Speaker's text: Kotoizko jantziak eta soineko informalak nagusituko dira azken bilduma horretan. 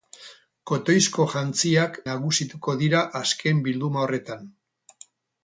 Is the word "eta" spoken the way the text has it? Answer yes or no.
no